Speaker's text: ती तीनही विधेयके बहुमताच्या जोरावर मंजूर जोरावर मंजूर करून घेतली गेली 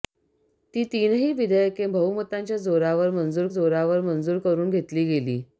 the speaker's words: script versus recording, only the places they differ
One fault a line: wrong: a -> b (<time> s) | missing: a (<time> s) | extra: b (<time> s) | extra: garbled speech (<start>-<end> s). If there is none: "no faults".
no faults